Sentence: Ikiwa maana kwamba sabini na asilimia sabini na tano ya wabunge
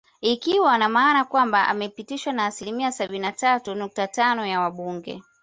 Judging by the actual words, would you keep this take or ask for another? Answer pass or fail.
fail